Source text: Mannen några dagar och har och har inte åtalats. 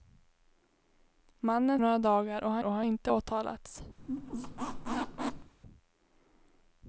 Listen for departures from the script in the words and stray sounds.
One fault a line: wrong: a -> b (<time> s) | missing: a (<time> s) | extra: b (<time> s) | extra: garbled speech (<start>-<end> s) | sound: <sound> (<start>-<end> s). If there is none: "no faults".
sound: squeak (4.0-5.5 s)